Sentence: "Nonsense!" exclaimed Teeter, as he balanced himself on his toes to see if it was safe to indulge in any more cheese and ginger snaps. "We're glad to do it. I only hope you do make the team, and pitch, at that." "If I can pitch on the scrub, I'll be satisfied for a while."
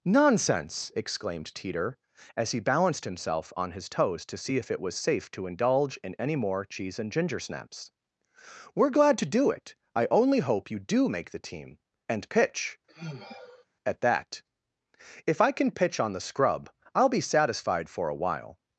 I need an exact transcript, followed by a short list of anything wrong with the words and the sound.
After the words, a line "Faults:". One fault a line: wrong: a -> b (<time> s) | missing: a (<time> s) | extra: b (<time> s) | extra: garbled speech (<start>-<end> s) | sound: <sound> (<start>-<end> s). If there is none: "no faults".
"Nonsense!" exclaimed Teeter, as he balanced himself on his toes to see if it was safe to indulge in any more cheese and ginger snaps. "We're glad to do it. I only hope you do make the team, and pitch, at that." "If I can pitch on the scrub, I'll be satisfied for a while."
Faults:
sound: sigh (12.9-13.7 s)